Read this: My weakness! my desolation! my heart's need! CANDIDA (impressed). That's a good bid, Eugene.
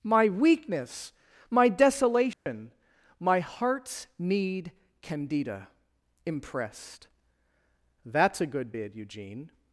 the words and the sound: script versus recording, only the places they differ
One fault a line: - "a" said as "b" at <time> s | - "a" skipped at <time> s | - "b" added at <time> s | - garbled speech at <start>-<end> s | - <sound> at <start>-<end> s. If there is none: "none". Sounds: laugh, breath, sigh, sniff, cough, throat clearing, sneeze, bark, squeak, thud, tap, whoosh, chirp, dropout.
- dropout at 2.3-2.5 s